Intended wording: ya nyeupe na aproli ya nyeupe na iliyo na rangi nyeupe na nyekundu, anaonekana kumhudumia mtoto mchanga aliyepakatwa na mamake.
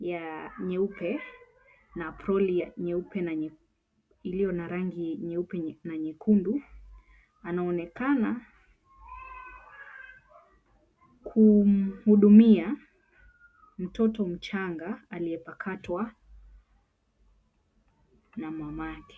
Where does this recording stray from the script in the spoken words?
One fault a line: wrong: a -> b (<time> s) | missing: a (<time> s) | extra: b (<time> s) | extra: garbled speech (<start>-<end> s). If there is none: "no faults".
no faults